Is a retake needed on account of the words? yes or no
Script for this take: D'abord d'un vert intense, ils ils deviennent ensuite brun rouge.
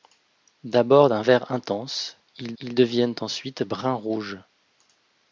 no